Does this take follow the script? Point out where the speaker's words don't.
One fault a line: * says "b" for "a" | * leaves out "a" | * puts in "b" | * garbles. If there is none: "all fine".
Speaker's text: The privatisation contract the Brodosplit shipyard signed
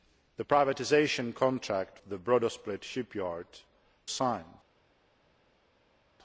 all fine